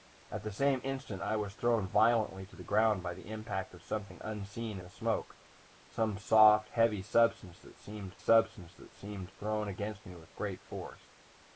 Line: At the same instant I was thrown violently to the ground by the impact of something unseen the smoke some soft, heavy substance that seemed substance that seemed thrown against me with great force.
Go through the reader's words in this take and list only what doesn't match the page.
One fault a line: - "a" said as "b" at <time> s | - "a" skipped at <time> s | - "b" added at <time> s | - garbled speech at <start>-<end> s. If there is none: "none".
none